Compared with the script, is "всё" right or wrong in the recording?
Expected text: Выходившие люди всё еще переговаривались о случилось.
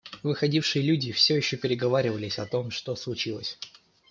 right